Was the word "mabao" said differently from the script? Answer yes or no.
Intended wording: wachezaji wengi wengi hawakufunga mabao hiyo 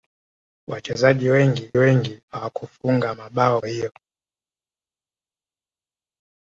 no